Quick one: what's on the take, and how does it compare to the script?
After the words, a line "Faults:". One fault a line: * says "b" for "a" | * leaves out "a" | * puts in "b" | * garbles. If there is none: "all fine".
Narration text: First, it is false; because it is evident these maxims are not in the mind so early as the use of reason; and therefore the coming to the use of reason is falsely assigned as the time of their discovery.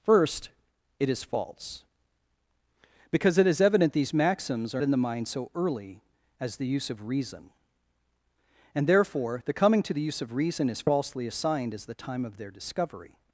First, it is false; because it is evident these maxims are in the mind so early as the use of reason; and therefore the coming to the use of reason is falsely assigned as the time of their discovery.
Faults:
* leaves out "not"